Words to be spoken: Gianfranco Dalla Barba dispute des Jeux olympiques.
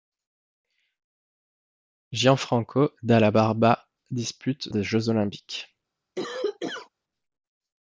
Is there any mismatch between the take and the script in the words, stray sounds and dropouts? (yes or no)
yes